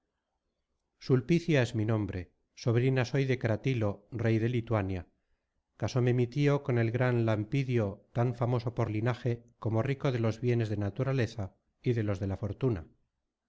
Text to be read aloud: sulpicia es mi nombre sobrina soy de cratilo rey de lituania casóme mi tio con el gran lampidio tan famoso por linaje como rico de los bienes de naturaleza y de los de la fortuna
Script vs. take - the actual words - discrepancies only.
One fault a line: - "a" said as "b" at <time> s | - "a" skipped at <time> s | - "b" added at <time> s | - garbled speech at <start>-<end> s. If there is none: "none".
none